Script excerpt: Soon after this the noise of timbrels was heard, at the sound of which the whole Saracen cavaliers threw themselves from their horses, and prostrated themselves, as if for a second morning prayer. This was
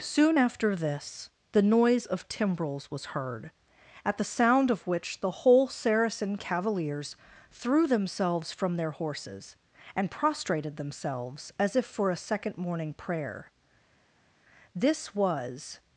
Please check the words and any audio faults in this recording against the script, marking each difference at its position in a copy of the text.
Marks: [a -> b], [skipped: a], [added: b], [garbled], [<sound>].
Soon after this the noise of timbrels was heard, at the sound of which the whole Saracen cavaliers threw themselves from their horses, and prostrated themselves, as if for a second morning prayer. This was